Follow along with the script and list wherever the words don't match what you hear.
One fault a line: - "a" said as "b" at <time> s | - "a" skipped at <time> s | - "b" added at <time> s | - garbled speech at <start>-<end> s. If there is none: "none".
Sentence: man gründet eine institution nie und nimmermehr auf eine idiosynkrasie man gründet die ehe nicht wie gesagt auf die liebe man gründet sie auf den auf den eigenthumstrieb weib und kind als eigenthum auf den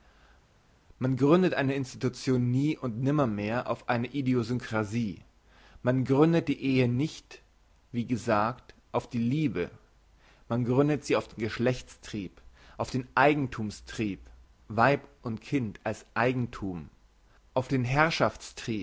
- "geschlechtstrieb" added at 11.4 s